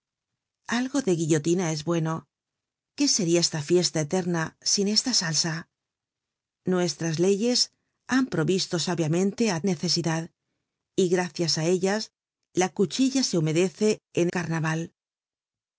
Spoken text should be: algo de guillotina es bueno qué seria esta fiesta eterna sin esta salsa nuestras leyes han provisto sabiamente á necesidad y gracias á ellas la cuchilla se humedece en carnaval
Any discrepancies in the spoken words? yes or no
no